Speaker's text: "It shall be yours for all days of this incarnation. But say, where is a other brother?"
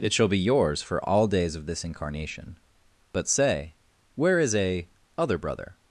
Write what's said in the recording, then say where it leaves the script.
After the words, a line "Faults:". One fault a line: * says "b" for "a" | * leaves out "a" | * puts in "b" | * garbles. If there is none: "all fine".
"It shall be yours for all days of this incarnation. But say, where is a other brother?"
Faults:
all fine